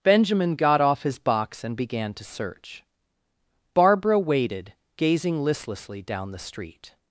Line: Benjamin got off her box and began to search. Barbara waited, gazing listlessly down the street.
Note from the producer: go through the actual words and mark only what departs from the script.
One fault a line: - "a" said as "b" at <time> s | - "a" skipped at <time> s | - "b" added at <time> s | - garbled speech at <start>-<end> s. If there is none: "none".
- "her" said as "his" at 1.0 s